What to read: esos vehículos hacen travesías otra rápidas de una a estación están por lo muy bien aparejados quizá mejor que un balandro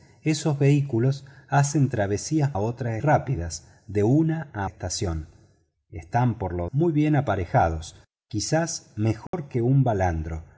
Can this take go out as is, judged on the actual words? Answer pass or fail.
pass